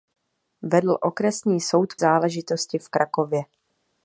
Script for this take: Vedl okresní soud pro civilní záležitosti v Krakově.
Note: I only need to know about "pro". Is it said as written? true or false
false